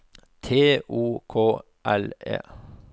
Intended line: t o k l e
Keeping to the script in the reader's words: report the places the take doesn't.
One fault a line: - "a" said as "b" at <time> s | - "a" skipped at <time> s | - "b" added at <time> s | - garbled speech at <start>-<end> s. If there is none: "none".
none